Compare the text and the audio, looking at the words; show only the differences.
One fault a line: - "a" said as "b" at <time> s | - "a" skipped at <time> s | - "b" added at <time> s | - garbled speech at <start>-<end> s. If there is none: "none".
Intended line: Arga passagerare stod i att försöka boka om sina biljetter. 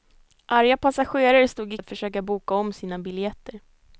none